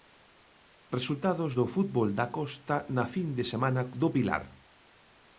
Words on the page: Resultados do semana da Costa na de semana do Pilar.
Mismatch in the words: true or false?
true